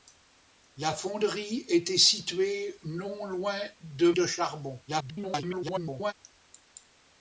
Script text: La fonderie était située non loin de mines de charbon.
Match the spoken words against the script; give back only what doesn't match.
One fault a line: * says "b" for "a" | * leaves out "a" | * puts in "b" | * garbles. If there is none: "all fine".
* leaves out "mines"
* garbles